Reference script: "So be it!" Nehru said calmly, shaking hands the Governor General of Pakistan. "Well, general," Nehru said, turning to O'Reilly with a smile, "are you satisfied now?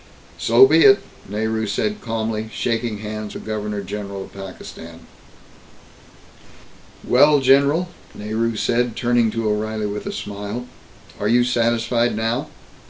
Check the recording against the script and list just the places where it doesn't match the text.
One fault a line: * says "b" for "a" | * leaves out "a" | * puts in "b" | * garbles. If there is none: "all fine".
all fine